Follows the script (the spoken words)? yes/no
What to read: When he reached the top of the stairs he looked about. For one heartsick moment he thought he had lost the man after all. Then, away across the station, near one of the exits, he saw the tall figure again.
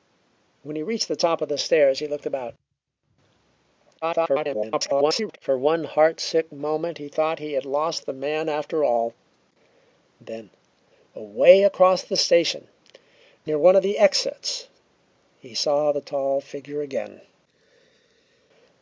no